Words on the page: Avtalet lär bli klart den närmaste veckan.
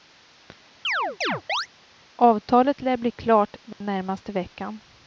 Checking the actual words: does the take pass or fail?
pass